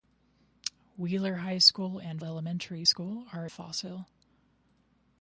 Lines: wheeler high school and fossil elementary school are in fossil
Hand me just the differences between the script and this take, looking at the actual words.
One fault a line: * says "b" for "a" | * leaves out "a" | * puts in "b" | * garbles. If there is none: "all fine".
* leaves out "fossil"
* leaves out "in"